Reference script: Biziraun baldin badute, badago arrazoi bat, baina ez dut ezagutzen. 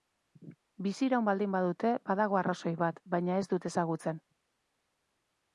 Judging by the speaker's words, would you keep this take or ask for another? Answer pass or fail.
pass